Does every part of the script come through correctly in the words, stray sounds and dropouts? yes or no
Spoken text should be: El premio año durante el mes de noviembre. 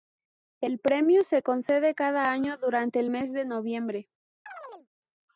no